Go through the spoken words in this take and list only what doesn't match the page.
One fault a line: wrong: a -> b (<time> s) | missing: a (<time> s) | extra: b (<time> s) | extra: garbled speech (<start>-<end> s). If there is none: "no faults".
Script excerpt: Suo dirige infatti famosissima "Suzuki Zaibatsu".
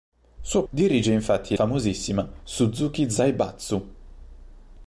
no faults